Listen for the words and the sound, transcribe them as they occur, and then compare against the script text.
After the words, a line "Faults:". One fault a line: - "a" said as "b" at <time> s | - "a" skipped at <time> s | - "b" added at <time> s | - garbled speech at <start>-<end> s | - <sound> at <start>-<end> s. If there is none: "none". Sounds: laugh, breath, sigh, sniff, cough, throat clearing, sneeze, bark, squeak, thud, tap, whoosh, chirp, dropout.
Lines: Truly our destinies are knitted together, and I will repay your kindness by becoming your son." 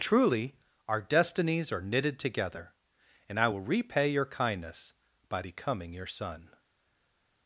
Truly our destinies are knitted together, and I will repay your kindness by becoming your son."
Faults:
none